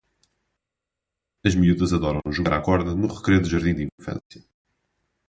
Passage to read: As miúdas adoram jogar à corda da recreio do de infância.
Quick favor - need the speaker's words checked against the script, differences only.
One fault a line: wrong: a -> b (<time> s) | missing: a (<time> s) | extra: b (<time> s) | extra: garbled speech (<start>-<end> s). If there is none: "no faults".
wrong: da -> no (2.9 s)
extra: jardim (3.5 s)